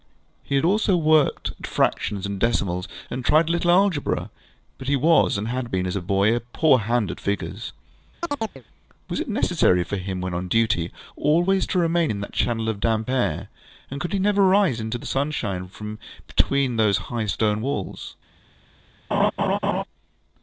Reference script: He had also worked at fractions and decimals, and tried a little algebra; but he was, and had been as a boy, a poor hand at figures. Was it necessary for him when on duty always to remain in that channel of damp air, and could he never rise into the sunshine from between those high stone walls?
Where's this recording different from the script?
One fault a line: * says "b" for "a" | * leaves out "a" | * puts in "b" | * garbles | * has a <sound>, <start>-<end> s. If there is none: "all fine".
* has a chirp, 8.2-8.6 s
* has a laugh, 19.1-19.8 s